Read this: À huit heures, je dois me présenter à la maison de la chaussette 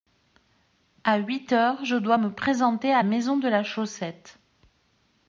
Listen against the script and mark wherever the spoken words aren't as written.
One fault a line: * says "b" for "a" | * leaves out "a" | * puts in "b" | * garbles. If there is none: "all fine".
* leaves out "la"